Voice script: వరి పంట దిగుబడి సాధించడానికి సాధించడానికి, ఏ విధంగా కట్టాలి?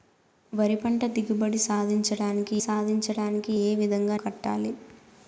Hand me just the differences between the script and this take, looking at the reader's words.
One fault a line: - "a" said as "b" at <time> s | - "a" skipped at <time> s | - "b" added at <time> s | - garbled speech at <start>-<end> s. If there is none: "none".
none